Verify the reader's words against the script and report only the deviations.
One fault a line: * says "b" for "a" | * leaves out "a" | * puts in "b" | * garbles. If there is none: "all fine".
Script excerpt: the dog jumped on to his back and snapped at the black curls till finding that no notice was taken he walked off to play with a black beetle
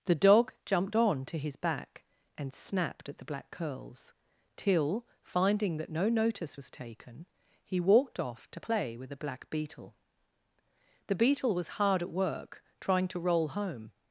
* puts in "the beetle was hard at work trying to roll home"